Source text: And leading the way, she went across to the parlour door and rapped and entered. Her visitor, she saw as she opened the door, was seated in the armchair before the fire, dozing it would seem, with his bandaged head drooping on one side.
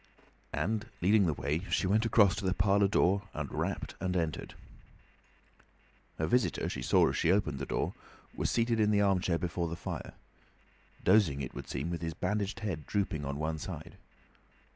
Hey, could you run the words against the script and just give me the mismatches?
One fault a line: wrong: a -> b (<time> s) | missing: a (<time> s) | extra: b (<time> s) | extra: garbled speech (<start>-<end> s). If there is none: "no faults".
no faults